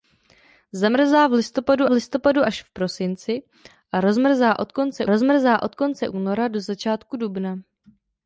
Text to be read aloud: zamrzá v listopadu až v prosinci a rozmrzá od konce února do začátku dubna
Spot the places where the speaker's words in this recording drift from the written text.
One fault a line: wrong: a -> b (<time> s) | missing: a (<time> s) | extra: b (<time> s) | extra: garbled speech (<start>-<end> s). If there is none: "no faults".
extra: listopadu (1.9 s)
extra: rozmrzá od konce (5.1 s)